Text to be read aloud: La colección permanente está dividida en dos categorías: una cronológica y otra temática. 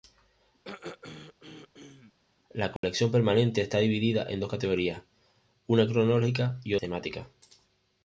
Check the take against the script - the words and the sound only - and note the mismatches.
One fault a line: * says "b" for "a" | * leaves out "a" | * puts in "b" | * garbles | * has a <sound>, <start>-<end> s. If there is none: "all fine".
* has a throat clearing, 0.6-2.1 s
* has a dropout, 2.8-2.8 s
* leaves out "otra"